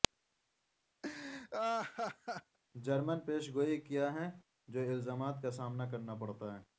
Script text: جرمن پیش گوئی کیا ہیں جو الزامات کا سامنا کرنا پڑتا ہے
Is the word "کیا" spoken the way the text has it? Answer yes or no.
yes